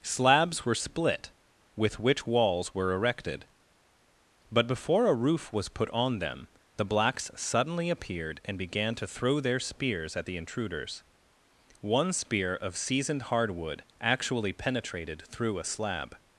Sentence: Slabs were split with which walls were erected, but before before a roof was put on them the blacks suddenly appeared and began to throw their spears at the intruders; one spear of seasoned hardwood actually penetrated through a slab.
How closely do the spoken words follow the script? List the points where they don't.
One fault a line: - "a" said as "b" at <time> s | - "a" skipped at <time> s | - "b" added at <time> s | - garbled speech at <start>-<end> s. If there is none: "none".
- "before" skipped at 5.0 s